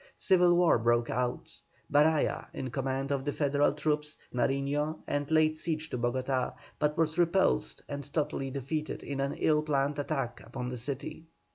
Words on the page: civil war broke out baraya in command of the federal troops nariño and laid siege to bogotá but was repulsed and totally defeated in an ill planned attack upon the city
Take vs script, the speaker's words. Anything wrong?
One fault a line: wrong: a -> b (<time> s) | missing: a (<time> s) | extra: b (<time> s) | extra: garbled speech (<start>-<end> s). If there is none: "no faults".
no faults